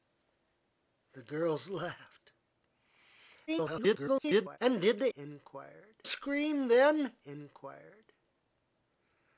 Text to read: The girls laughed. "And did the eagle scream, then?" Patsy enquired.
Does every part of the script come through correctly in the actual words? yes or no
no